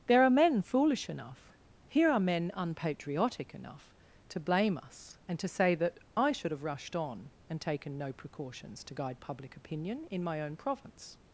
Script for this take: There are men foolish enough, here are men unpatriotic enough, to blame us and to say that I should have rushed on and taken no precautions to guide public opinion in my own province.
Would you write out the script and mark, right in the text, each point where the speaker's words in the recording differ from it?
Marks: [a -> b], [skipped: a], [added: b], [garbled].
There are men foolish enough, here are men unpatriotic enough, to blame us and to say that I should have rushed on and taken no precautions to guide public opinion in my own province.